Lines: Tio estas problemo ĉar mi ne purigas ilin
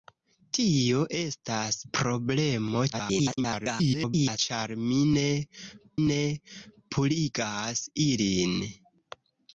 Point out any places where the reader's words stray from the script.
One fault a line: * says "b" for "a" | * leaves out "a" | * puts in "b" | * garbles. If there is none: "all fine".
* garbles
* puts in "ne"